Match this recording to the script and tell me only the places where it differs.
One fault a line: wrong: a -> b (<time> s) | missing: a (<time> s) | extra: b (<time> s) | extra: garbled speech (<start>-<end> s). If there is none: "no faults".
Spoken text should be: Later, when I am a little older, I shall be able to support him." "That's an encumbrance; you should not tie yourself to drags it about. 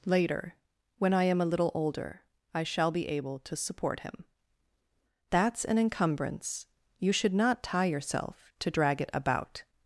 wrong: drags -> drag (8.7 s)